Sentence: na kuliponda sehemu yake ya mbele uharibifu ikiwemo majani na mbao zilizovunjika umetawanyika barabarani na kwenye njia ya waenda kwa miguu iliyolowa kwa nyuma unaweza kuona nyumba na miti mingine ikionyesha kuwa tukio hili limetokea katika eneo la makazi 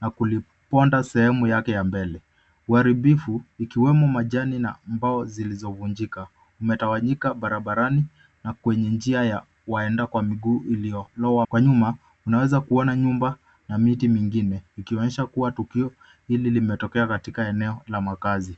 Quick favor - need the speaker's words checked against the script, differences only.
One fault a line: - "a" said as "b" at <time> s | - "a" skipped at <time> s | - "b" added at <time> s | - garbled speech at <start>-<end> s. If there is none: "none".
none